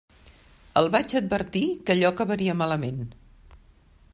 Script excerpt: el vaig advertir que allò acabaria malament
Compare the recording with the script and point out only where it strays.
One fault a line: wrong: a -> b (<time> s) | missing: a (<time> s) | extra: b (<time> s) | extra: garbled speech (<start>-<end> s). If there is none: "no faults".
no faults